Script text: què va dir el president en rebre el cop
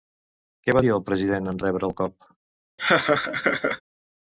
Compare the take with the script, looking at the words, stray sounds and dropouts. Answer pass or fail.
fail